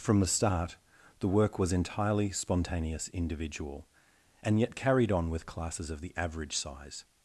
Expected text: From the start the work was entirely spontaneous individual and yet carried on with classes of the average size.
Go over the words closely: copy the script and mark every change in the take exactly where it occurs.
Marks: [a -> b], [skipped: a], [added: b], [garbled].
From the start the work was entirely spontaneous individual and yet carried on with classes of the average size.